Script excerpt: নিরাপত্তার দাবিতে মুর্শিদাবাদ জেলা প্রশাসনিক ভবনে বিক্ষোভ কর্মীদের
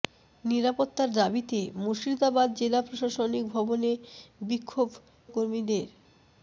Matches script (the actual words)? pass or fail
pass